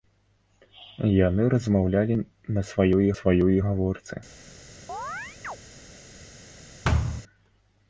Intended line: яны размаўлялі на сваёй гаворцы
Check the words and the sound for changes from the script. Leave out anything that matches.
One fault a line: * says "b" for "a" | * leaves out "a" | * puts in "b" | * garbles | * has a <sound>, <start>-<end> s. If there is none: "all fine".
* puts in "сваёй"
* has a chirp, 4.9-5.6 s
* has a thud, 6.8-7.2 s